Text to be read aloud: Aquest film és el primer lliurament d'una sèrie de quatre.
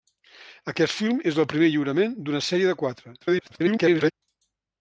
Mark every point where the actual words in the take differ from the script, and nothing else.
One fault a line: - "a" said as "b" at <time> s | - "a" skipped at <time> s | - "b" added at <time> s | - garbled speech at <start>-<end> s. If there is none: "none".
- garbled speech at 3.2-4.1 s